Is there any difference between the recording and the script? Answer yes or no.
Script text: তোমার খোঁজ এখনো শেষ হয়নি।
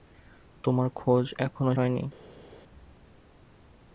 yes